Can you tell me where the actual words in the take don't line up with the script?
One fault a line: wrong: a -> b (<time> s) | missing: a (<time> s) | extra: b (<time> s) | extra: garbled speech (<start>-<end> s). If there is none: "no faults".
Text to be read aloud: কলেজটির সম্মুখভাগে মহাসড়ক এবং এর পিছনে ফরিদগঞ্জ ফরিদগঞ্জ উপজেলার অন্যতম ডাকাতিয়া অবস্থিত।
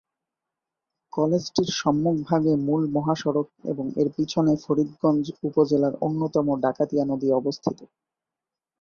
extra: মূল (2.6 s)
missing: ফরিদগঞ্জ (5.2 s)
extra: নদী (7.1 s)